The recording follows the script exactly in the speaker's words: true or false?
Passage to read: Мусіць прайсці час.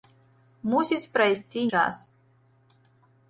true